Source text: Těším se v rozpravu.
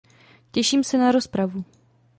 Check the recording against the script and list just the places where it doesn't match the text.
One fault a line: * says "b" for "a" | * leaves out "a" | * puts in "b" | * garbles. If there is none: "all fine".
* says "na" for "v"